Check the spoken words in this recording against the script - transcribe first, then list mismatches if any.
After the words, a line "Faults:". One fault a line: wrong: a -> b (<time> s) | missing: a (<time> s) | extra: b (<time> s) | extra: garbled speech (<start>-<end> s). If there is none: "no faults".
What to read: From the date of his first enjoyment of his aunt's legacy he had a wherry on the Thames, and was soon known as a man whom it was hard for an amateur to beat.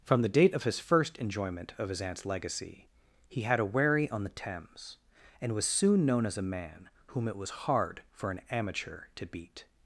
From the date of his first enjoyment of his aunt's legacy he had a wherry on the Thames, and was soon known as a man whom it was hard for an amateur to beat.
Faults:
no faults